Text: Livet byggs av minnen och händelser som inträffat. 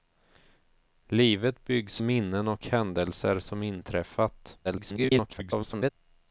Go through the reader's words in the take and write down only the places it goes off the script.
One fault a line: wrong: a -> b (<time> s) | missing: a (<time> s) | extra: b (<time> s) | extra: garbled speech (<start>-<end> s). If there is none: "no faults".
missing: av (2.0 s)
extra: garbled speech (4.6-5.9 s)